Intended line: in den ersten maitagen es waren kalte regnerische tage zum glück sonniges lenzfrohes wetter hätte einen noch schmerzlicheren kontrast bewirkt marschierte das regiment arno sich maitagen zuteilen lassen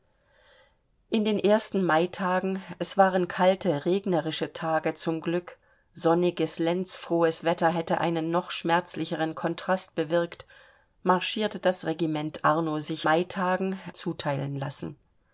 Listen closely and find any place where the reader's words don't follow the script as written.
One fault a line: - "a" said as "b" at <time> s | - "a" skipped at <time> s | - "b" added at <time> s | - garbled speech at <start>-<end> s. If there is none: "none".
none